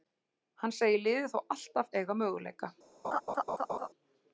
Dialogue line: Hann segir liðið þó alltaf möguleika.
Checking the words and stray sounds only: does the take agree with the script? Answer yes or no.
no